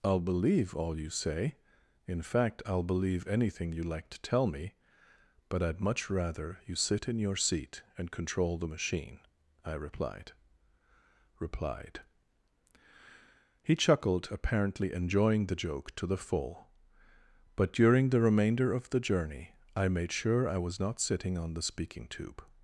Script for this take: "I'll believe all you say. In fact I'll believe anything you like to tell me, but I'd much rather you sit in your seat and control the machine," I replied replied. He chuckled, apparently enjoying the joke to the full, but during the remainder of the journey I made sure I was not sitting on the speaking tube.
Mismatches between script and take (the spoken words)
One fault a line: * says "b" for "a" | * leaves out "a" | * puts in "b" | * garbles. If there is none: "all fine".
all fine